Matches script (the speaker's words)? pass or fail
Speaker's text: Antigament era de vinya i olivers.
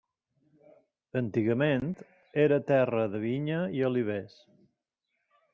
fail